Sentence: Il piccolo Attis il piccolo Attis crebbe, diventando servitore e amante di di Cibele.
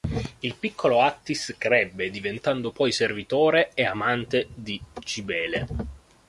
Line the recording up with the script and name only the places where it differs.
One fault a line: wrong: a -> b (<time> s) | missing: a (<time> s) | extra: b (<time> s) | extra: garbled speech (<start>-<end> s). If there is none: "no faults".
missing: il piccolo Attis (1.5 s)
extra: poi (2.7 s)
missing: di (4.8 s)